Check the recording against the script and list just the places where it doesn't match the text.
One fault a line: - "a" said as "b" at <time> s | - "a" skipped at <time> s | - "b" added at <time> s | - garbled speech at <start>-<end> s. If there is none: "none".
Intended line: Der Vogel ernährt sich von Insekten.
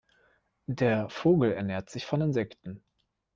none